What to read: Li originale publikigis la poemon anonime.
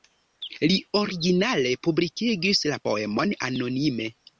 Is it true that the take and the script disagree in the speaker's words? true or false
false